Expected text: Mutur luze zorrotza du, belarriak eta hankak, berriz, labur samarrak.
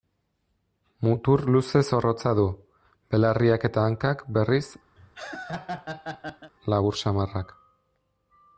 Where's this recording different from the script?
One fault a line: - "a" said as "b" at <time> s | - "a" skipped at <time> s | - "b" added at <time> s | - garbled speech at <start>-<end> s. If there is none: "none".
none